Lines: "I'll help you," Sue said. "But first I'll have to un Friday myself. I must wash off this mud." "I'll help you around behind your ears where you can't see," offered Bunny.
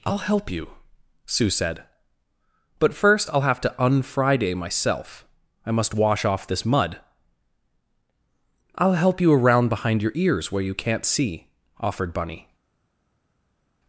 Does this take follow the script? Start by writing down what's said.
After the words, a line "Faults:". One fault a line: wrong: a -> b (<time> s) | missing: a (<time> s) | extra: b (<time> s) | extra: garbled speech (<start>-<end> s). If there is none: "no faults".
"I'll help you," Sue said. "But first I'll have to un Friday myself. I must wash off this mud." "I'll help you around behind your ears where you can't see," offered Bunny.
Faults:
no faults